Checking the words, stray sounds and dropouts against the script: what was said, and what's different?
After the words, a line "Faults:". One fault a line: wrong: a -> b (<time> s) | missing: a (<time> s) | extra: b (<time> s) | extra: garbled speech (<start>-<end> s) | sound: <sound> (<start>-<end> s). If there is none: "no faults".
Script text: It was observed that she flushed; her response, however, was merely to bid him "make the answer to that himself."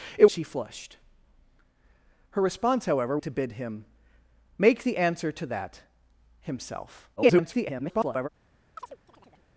It she flushed; her response, however, to bid him "make the answer to that himself." [garbled]
Faults:
missing: was observed that (0.2 s)
missing: was merely (3.2 s)
extra: garbled speech (7.2-8.3 s)
sound: chirp (8.8-9.5 s)